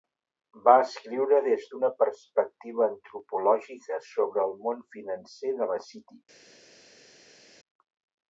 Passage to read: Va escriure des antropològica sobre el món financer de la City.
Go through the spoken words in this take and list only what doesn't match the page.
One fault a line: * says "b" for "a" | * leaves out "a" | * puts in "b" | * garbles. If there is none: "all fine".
* puts in "d'una perspectiva"